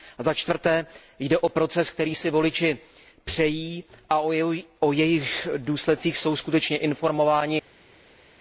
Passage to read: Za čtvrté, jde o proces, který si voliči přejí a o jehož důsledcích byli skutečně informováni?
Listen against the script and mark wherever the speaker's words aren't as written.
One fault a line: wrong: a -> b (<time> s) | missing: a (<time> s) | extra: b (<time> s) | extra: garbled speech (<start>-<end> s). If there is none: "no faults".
wrong: byli -> jsou (6.2 s)